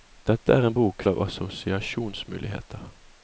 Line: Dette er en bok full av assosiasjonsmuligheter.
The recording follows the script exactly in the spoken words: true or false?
false